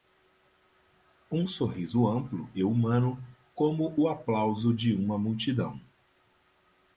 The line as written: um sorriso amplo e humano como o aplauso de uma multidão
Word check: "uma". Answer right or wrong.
right